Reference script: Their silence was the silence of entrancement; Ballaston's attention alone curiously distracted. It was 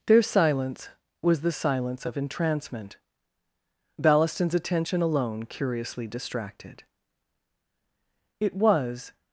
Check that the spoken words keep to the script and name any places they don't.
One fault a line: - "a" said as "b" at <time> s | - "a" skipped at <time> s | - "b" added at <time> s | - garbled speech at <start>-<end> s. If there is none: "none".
none